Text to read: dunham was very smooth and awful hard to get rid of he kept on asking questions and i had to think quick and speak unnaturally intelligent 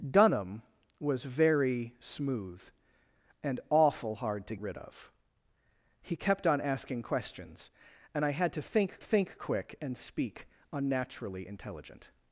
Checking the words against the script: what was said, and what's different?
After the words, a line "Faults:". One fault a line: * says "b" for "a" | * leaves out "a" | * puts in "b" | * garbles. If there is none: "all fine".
dunham was very smooth and awful hard to rid of he kept on asking questions and i had to think think quick and speak unnaturally intelligent
Faults:
* leaves out "get"
* puts in "think"